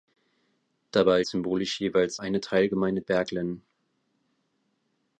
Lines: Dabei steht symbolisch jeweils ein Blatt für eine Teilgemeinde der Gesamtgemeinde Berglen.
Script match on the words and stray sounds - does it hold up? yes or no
no